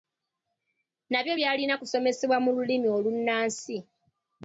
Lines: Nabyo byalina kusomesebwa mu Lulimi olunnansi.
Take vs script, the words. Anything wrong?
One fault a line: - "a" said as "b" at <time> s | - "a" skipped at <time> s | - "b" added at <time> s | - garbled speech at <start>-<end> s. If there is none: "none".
none